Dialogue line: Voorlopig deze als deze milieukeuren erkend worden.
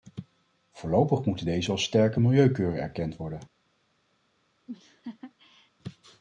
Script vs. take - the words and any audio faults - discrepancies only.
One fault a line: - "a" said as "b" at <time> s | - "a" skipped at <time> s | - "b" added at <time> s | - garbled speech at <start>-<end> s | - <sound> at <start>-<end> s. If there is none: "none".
- "moeten" added at 1.2 s
- "deze" said as "sterke" at 1.8 s
- laugh at 4.7-5.7 s